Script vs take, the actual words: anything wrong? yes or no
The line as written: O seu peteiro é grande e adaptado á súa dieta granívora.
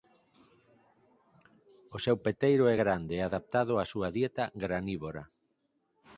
no